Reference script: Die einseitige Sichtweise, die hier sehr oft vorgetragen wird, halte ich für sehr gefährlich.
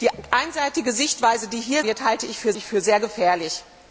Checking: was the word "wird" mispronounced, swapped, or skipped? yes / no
yes